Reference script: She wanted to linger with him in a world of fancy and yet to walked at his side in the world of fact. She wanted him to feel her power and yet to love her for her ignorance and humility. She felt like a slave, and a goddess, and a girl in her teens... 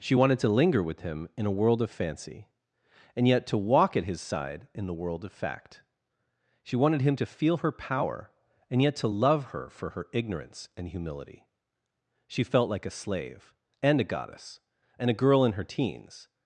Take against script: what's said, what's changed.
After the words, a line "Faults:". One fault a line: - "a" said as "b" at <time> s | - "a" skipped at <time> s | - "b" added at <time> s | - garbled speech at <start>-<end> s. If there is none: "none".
She wanted to linger with him in a world of fancy and yet to walk at his side in the world of fact. She wanted him to feel her power and yet to love her for her ignorance and humility. She felt like a slave, and a goddess, and a girl in her teens...
Faults:
- "walked" said as "walk" at 3.6 s